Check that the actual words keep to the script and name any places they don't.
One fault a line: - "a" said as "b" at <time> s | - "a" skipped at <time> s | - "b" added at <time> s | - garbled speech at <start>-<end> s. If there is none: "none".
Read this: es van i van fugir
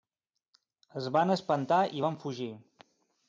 - "espantar" added at 1.3 s